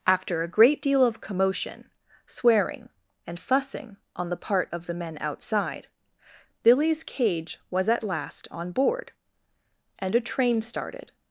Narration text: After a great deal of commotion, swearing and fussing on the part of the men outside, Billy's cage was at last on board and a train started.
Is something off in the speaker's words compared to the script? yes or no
no